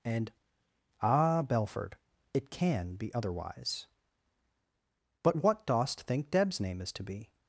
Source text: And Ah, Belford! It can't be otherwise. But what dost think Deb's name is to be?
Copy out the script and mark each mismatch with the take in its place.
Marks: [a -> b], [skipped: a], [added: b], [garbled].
And Ah, Belford! It [can't -> can] be otherwise. But what dost think Deb's name is to be?